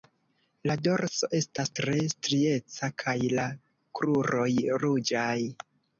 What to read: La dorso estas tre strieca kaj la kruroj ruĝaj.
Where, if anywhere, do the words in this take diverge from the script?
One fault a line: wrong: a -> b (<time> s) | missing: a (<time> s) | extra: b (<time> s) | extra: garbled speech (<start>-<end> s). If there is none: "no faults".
no faults